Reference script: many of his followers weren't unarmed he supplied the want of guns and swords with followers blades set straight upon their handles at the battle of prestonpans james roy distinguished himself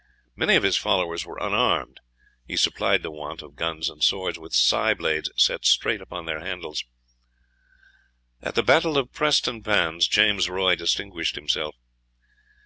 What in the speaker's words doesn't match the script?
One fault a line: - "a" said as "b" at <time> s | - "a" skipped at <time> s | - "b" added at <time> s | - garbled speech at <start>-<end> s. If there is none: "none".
- "weren't" said as "were" at 1.3 s
- "followers" said as "scythe" at 4.5 s